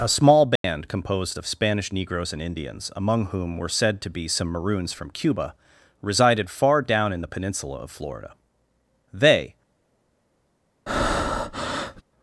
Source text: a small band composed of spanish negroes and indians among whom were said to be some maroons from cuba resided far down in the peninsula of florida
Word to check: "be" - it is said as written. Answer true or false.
true